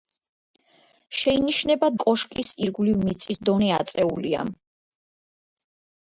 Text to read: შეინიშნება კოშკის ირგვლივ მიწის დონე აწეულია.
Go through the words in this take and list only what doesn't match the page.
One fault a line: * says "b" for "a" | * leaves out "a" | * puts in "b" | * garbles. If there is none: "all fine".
all fine